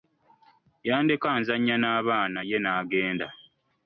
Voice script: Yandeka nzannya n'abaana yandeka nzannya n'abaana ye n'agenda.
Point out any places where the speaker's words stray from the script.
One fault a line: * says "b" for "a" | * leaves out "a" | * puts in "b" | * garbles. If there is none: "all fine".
* leaves out "yandeka nzannya n'abaana"